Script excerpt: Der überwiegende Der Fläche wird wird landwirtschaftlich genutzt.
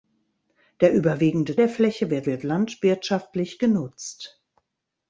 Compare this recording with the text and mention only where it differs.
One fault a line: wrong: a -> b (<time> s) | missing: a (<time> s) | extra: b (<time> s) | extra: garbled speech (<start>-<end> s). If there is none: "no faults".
no faults